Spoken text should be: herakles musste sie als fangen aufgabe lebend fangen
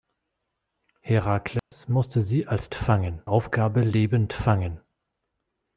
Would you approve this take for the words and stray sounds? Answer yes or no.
no